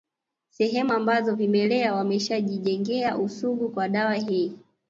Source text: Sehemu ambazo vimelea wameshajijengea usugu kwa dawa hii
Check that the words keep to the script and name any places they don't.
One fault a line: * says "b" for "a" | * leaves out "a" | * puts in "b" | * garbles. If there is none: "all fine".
all fine